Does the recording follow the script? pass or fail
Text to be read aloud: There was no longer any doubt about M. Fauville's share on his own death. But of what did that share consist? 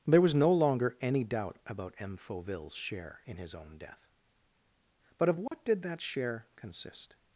fail